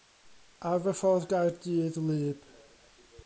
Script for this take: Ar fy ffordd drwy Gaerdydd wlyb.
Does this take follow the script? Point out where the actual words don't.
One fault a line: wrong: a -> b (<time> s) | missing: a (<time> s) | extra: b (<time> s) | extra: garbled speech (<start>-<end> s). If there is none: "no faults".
missing: drwy (1.3 s)